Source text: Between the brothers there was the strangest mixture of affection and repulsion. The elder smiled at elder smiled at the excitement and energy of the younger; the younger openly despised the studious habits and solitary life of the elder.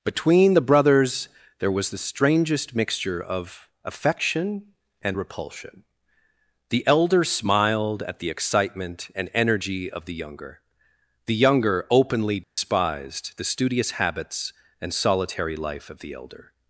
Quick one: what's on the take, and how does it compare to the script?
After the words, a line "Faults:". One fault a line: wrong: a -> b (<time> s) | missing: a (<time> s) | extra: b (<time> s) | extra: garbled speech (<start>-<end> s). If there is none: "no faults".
Between the brothers there was the strangest mixture of affection and repulsion. The elder smiled at the excitement and energy of the younger; the younger openly despised the studious habits and solitary life of the elder.
Faults:
missing: elder smiled at (8.2 s)